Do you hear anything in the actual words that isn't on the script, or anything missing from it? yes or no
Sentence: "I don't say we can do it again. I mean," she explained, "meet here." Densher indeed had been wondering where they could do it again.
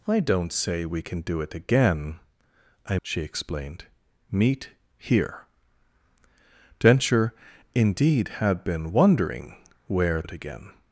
yes